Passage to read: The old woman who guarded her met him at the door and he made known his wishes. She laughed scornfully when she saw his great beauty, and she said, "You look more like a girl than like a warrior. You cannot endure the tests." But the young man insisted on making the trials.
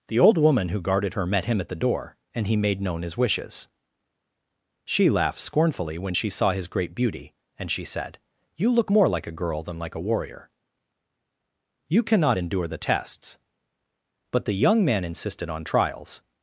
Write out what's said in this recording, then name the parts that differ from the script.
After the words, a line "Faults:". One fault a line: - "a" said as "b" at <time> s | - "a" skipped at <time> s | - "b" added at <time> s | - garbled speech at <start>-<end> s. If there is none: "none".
The old woman who guarded her met him at the door and he made known his wishes. She laughed scornfully when she saw his great beauty, and she said, "You look more like a girl than like a warrior. You cannot endure the tests." But the young man insisted on trials.
Faults:
- "making the" skipped at 15.6 s